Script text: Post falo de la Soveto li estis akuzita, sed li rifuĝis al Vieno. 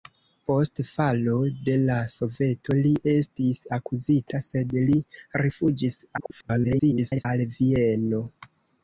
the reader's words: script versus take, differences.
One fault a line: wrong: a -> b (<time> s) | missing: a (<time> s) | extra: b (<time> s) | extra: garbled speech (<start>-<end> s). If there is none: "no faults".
extra: garbled speech (6.2-7.3 s)